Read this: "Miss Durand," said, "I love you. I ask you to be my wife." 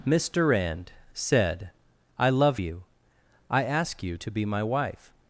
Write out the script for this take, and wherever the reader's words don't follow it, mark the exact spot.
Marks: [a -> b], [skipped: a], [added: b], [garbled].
"Miss Durand," said, "I love you. I ask you to be my wife."